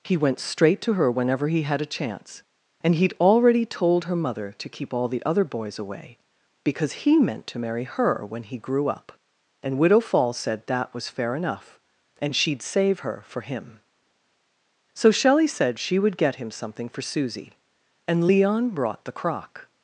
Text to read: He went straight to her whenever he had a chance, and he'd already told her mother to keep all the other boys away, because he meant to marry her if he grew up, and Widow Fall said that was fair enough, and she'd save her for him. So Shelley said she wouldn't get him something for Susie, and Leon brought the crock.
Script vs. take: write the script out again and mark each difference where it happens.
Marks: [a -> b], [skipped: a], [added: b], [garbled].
He went straight to her whenever he had a chance, and he'd already told her mother to keep all the other boys away, because he meant to marry her [if -> when] he grew up, and Widow Fall said that was fair enough, and she'd save her for him. So Shelley said she [wouldn't -> would] get him something for Susie, and Leon brought the crock.